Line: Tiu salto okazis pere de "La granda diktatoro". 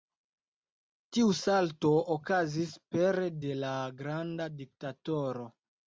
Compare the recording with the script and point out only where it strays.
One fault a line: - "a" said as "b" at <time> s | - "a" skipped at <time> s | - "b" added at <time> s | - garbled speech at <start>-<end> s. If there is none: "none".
none